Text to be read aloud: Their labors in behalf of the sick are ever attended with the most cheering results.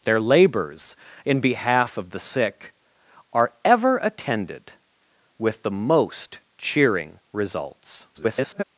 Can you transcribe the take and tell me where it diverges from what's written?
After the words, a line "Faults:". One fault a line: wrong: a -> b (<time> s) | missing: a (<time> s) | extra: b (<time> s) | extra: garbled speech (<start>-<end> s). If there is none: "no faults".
Their labors in behalf of the sick are ever attended with the most cheering results. [garbled]
Faults:
extra: garbled speech (8.1-8.6 s)